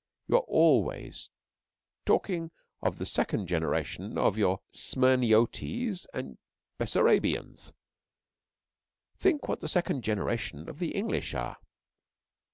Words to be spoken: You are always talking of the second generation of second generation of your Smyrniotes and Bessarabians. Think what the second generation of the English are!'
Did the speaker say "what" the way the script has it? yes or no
yes